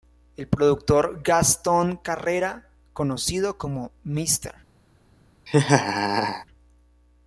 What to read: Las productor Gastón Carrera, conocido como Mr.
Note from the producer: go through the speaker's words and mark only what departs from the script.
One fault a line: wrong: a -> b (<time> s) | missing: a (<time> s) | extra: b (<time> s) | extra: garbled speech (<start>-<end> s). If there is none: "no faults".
wrong: Las -> El (0.3 s)